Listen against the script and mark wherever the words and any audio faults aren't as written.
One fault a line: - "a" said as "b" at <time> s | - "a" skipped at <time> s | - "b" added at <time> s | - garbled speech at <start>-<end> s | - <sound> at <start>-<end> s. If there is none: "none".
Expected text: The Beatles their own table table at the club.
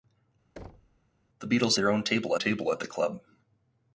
- thud at 0.6-1.0 s